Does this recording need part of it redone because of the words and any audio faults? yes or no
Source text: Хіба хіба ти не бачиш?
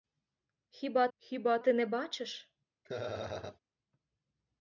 yes